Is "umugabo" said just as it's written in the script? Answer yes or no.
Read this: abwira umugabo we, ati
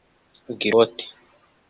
no